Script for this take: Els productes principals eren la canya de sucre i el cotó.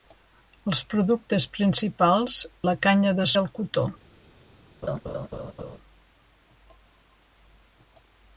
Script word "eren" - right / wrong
wrong